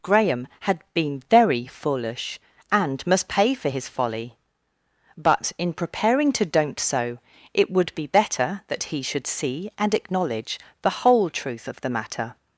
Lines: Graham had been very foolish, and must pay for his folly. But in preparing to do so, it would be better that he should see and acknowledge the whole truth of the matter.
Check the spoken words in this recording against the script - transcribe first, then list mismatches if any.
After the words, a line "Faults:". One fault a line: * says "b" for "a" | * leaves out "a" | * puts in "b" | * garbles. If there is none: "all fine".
Graham had been very foolish, and must pay for his folly. But in preparing to don't so, it would be better that he should see and acknowledge the whole truth of the matter.
Faults:
* says "don't" for "do"